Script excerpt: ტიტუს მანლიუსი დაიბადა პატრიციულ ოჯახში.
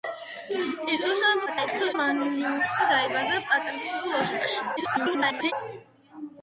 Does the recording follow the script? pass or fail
fail